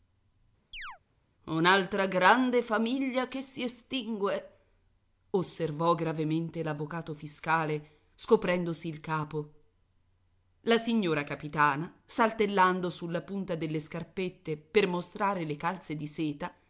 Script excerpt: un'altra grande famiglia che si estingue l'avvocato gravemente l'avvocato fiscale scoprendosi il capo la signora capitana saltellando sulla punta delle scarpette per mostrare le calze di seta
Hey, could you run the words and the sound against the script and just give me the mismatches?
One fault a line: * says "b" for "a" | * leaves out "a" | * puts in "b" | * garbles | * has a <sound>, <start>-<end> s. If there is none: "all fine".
* has a chirp, 0.7-1.0 s
* says "osservò" for "l'avvocato"